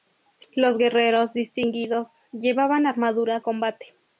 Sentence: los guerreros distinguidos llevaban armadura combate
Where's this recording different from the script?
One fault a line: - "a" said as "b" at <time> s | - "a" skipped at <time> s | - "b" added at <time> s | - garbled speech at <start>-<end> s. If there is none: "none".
none